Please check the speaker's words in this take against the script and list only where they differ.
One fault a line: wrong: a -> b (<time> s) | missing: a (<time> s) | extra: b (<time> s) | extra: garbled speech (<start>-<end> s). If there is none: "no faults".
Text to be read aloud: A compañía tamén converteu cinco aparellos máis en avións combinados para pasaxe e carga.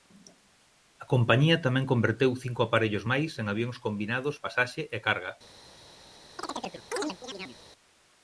missing: para (4.4 s)